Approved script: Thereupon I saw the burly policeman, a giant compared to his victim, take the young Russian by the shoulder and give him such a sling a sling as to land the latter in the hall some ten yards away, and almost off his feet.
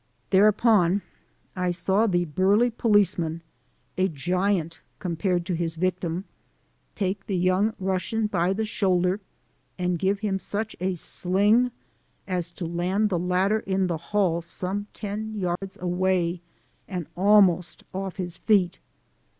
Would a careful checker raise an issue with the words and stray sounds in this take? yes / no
yes